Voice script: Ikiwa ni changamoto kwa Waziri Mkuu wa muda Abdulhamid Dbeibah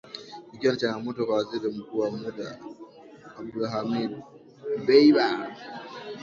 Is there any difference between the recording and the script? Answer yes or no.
no